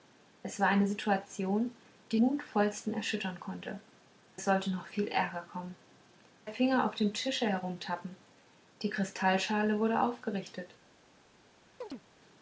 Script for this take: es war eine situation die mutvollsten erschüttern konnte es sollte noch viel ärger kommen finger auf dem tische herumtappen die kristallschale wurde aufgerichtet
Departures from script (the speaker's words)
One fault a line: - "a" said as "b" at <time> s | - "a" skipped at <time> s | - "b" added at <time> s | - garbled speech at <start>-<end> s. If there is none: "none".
none